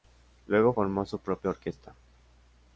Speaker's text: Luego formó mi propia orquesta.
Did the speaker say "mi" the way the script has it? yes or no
no